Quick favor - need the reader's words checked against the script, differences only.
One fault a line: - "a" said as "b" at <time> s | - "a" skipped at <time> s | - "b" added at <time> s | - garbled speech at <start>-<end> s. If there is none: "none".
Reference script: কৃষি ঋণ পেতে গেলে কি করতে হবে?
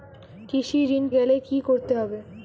- "পেতে" skipped at 1.1 s